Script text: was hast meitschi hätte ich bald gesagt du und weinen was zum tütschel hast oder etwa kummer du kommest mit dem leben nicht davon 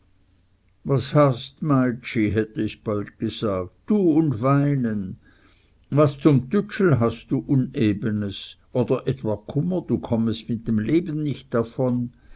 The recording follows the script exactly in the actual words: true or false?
false